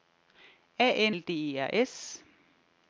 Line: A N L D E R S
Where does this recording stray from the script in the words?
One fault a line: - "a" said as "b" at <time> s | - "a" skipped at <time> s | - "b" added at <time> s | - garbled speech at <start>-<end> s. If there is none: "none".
none